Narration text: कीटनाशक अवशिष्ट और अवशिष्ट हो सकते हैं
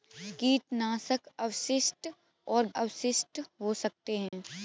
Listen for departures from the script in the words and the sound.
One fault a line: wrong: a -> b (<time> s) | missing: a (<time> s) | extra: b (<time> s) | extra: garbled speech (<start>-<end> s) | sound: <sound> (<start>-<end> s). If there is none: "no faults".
sound: dropout (4.3-4.3 s)